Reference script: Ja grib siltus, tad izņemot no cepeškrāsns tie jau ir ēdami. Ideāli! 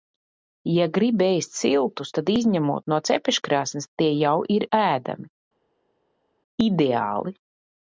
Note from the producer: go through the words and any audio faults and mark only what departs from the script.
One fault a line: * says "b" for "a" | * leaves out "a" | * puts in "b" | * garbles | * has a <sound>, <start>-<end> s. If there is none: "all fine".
* puts in "ēst"